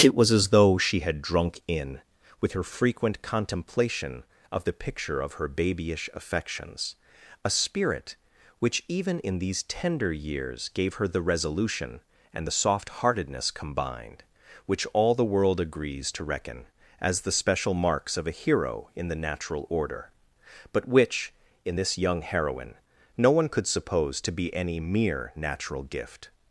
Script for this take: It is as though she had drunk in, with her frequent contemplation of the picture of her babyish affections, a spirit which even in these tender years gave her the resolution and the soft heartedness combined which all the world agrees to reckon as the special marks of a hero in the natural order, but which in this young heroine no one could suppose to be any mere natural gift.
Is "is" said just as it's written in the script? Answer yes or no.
no